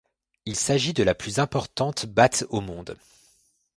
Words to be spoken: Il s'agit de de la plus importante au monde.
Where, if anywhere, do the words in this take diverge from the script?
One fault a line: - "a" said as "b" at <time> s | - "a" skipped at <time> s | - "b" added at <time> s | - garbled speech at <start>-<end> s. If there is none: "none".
- "de" skipped at 1.0 s
- "batte" added at 2.1 s